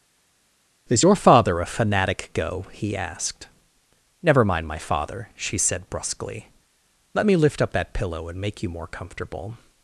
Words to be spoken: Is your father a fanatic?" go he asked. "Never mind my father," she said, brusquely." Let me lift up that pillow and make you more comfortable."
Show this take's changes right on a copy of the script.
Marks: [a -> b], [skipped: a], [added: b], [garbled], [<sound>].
Is your father a fanatic?" go he asked. "Never mind my father," she said, brusquely." Let me lift up that pillow and make you more comfortable."